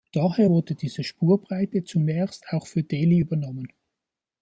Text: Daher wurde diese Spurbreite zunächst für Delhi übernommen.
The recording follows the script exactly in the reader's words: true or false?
false